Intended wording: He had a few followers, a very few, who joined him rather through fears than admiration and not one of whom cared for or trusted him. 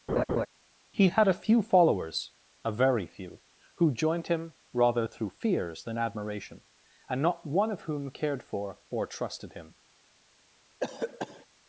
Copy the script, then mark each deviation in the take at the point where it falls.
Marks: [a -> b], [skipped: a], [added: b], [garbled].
He had a few followers, a very few, who joined him rather through fears than admiration and not one of whom cared for or trusted him.